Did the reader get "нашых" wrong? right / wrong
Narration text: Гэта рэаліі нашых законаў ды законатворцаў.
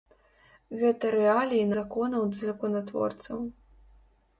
wrong